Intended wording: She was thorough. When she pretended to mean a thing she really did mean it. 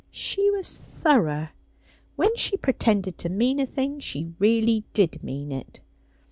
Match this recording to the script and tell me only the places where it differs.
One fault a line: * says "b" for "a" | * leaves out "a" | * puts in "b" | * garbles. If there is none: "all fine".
all fine